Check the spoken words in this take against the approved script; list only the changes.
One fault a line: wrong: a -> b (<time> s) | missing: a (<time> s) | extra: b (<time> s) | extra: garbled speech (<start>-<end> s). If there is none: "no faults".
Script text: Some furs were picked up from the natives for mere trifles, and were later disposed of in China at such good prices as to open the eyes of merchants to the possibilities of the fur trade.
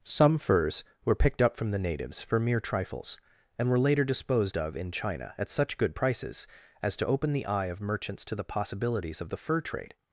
wrong: eyes -> eye (7.4 s)